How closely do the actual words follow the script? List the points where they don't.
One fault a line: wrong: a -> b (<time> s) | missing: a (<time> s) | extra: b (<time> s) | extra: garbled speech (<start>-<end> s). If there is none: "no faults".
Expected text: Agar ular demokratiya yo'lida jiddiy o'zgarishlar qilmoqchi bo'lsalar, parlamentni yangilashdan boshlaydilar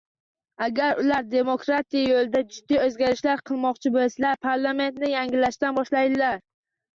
no faults